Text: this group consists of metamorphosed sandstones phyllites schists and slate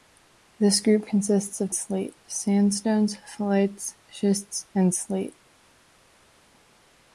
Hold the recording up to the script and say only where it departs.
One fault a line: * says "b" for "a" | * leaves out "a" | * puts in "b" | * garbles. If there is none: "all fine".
* says "slate" for "metamorphosed"